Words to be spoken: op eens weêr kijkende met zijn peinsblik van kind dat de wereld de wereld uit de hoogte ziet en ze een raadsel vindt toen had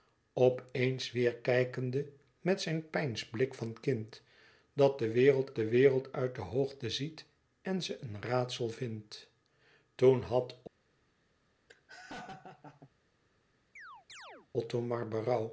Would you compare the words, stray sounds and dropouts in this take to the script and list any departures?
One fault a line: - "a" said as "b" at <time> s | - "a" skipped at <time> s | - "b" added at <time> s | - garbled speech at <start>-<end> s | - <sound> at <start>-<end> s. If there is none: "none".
- laugh at 11.7-12.9 s
- chirp at 13.8-14.5 s